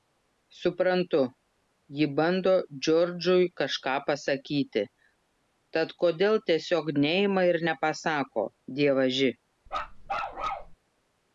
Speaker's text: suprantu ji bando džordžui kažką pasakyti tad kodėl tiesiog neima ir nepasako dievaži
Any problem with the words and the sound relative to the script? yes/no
yes